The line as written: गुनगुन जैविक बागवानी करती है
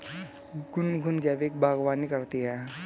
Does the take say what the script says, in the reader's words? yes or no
yes